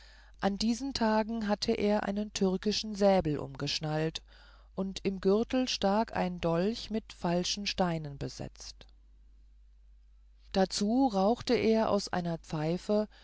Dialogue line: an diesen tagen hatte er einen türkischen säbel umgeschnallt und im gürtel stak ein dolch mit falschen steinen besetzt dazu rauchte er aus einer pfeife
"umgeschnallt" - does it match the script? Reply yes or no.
yes